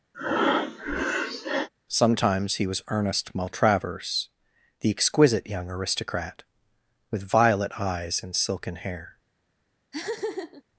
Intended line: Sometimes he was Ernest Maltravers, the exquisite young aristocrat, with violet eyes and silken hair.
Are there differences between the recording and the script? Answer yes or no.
no